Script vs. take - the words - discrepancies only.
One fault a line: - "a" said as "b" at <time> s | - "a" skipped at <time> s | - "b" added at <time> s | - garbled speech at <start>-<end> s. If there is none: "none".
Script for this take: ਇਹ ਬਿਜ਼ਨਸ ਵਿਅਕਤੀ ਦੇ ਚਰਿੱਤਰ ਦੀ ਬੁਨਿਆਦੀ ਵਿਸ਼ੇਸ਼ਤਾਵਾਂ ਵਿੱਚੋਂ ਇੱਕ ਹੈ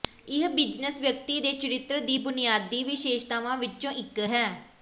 none